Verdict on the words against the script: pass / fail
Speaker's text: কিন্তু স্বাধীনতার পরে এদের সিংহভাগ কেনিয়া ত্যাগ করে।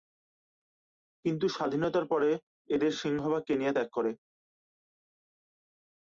pass